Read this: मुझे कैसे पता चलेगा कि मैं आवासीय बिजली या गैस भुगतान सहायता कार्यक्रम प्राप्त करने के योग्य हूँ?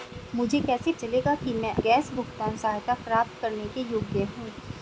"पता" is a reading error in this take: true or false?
true